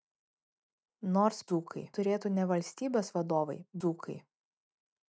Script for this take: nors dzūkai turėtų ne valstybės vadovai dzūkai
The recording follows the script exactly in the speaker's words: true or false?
true